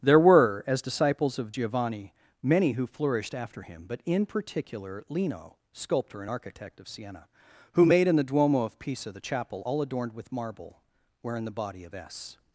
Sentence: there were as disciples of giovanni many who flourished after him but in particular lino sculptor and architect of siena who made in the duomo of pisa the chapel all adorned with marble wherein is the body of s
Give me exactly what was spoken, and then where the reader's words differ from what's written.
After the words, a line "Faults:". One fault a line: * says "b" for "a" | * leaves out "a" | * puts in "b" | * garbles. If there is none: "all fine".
there were as disciples of giovanni many who flourished after him but in particular lino sculptor and architect of siena who made in the duomo of pisa the chapel all adorned with marble wherein the body of s
Faults:
* leaves out "is"